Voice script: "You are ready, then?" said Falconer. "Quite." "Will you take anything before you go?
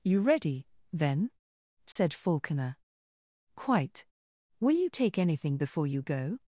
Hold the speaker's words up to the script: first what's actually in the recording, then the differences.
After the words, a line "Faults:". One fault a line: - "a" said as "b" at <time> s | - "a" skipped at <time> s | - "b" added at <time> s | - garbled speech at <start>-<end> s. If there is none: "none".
"You ready, then?" said Falconer. "Quite." "Will you take anything before you go?
Faults:
- "are" skipped at 0.2 s